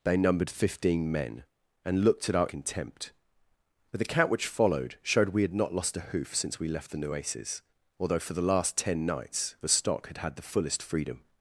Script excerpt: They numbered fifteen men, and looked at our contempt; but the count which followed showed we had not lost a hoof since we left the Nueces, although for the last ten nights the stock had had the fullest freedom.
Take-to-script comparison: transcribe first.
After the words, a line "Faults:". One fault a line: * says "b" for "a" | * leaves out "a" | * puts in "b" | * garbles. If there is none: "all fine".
They numbered fifteen men, and looked at our contempt; but the count which followed showed we had not lost a hoof since we left the Nueces, although for the last ten nights the stock had had the fullest freedom.
Faults:
all fine